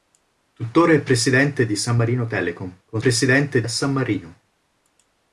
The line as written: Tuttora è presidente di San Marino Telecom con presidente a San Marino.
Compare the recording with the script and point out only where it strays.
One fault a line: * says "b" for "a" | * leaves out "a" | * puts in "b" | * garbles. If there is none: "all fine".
all fine